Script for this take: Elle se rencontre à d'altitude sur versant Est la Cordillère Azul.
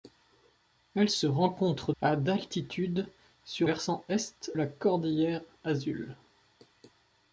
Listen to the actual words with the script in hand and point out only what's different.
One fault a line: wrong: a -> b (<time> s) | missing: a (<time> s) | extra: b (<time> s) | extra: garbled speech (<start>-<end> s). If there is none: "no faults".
no faults